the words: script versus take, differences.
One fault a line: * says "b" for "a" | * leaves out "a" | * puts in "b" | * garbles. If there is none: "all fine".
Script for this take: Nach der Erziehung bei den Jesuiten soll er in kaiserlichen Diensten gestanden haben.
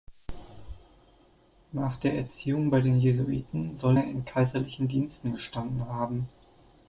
all fine